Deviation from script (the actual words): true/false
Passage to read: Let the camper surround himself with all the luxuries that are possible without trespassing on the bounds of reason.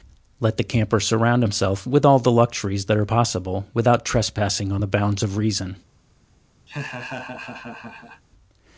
false